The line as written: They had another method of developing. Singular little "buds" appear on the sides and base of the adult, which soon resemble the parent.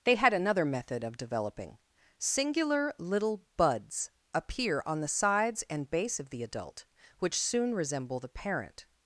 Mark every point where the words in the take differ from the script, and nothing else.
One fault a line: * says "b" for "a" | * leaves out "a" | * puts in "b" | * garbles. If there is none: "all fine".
all fine